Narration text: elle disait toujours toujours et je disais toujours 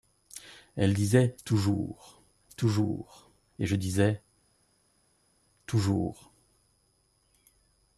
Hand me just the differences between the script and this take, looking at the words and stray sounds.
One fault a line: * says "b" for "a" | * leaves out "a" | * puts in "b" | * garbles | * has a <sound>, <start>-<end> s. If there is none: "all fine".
all fine